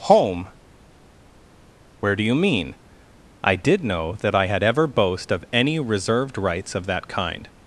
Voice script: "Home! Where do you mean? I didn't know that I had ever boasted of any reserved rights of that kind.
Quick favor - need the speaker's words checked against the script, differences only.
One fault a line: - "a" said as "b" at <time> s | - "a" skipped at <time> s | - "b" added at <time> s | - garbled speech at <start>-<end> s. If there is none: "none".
- "didn't" said as "did" at 3.6 s
- "boasted" said as "boast" at 4.9 s